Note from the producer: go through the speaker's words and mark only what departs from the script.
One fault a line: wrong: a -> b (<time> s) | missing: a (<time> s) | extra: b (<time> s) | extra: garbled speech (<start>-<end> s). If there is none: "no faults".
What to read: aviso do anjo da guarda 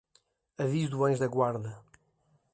no faults